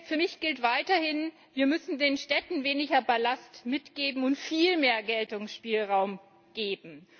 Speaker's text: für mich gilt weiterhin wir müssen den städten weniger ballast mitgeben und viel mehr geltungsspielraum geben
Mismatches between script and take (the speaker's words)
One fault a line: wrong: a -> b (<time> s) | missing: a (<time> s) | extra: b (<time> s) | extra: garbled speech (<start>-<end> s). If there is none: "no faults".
no faults